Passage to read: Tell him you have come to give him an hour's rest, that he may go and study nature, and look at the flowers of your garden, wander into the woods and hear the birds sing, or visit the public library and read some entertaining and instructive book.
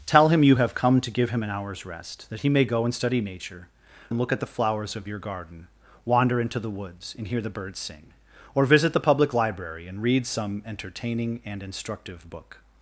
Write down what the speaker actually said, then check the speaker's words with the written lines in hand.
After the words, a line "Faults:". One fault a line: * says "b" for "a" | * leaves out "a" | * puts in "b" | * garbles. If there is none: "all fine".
Tell him you have come to give him an hour's rest, that he may go and study nature, and look at the flowers of your garden, wander into the woods and hear the birds sing, or visit the public library and read some entertaining and instructive book.
Faults:
all fine